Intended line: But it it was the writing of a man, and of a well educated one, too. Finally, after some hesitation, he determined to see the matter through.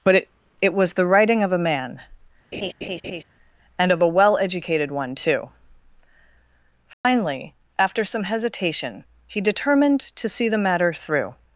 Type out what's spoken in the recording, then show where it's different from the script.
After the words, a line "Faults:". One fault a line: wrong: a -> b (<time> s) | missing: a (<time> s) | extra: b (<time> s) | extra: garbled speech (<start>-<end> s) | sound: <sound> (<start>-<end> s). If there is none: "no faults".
But it it was the writing of a man, and of a well educated one, too. Finally, after some hesitation, he determined to see the matter through.
Faults:
sound: laugh (2.5-3.2 s)
sound: dropout (6.9-7.0 s)